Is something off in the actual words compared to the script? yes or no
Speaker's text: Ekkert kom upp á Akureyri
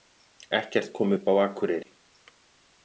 no